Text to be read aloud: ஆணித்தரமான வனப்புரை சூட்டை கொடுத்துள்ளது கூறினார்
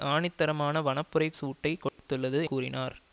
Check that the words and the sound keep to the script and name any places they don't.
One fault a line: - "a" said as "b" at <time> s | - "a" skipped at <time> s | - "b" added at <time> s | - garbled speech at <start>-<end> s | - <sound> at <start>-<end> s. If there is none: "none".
- dropout at 1.9-2.0 s